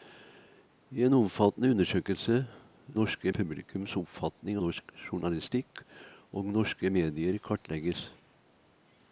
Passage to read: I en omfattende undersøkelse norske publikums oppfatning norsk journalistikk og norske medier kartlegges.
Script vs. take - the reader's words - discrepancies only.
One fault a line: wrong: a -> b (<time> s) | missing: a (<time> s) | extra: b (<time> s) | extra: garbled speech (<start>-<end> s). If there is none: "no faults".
no faults